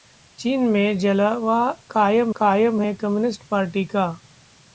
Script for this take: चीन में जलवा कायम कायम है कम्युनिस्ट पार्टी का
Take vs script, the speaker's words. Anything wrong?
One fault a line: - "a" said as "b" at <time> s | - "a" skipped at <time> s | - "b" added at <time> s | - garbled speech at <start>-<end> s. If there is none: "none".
none